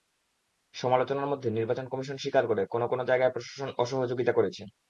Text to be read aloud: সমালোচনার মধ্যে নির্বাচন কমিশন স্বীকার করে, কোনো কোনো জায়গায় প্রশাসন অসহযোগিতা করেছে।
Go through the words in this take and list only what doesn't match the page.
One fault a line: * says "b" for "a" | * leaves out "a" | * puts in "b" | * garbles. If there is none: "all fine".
all fine